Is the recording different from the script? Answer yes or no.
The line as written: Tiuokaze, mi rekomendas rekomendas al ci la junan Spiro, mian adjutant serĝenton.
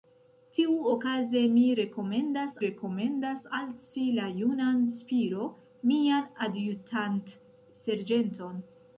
no